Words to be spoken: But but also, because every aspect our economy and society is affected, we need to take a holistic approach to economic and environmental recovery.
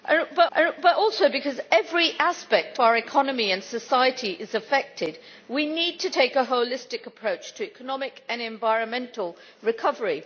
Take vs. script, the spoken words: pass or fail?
pass